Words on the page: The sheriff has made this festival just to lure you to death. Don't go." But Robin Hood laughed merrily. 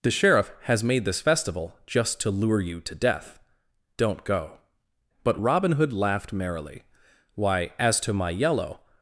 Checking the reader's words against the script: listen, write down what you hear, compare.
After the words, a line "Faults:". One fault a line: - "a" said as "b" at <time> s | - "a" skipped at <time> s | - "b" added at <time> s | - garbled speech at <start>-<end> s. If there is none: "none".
The sheriff has made this festival just to lure you to death. Don't go." But Robin Hood laughed merrily. "Why, as to my yellow
Faults:
- "Why as to my yellow" added at 7.3 s